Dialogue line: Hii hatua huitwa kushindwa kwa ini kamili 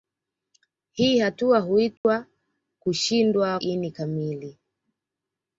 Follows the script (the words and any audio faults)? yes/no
no